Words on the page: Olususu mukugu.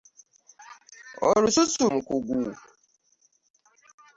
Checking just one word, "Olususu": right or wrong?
right